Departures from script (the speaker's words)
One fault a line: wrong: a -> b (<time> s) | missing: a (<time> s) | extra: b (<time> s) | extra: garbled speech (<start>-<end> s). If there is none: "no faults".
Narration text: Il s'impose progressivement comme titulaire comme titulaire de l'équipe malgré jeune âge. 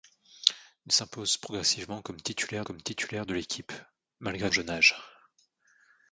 no faults